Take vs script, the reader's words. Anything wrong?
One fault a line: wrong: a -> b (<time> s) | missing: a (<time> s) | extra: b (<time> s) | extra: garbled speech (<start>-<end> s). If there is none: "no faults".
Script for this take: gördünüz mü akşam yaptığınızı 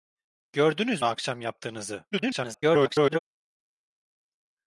missing: mü (1.0 s)
extra: garbled speech (2.1-3.2 s)